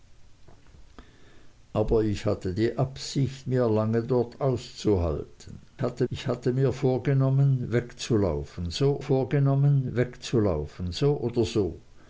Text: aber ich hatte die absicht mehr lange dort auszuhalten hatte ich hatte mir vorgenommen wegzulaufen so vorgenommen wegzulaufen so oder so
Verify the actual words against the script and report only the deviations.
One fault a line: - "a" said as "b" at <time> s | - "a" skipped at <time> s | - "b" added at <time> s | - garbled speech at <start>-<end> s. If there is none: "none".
none